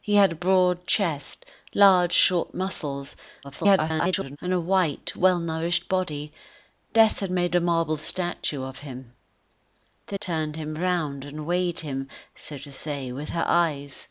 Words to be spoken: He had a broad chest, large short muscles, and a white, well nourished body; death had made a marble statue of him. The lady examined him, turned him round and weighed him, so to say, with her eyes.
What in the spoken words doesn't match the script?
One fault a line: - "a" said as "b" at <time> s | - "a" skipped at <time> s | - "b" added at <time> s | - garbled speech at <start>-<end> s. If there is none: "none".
- garbled speech at 3.4-4.4 s
- "lady examined him" skipped at 10.2 s